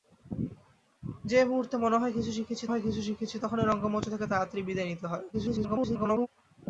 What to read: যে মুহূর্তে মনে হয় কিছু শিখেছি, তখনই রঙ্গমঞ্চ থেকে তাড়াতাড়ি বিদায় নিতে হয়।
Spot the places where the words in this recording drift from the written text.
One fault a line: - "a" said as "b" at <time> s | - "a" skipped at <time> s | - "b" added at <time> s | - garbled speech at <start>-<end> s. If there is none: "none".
- "হয় কিছু শিখেছি" added at 2.7 s
- garbled speech at 5.3-6.3 s